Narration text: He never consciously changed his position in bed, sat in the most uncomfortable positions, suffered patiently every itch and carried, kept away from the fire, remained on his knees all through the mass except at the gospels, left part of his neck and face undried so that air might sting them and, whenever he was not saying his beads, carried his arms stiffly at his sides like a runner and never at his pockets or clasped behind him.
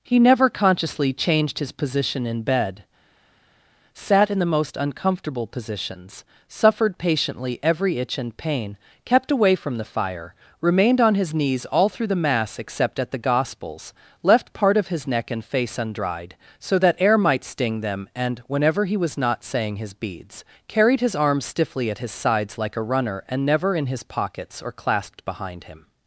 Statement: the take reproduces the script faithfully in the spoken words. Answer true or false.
false